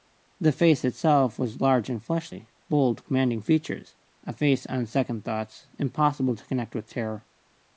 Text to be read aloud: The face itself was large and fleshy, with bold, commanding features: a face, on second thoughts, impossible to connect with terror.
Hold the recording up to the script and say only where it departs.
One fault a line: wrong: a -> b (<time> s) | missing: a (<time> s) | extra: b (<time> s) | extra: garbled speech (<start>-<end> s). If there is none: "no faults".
missing: with (2.5 s)